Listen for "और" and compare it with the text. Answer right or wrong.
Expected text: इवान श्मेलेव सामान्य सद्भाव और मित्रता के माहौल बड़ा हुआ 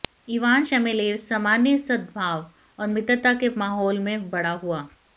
right